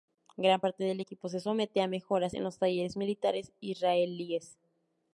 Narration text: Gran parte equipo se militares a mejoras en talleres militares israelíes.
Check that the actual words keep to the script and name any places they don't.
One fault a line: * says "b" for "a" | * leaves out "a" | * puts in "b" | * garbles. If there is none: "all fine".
* puts in "del"
* says "somete" for "militares"
* puts in "los"